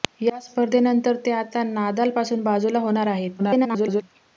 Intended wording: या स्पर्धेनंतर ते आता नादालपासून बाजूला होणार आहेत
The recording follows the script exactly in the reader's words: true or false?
false